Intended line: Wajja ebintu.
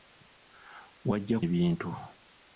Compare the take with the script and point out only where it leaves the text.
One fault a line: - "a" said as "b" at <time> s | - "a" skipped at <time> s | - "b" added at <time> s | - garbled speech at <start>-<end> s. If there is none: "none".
none